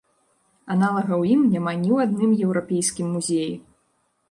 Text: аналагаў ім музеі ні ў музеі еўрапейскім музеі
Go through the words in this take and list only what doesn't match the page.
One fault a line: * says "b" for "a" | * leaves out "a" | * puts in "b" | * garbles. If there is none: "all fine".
* says "няма" for "музеі"
* says "адным" for "музеі"